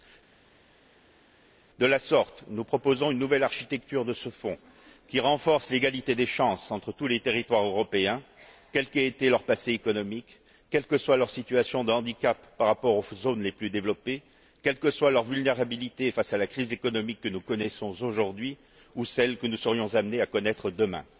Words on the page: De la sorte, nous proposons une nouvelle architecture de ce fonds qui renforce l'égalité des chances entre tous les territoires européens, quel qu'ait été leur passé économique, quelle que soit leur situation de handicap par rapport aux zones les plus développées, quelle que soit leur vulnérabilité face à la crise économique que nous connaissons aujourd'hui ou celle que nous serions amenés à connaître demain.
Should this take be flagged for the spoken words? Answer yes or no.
no